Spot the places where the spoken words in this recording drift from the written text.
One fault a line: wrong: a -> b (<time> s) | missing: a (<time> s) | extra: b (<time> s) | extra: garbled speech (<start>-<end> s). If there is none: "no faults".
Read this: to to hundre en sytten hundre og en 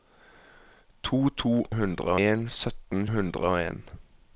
no faults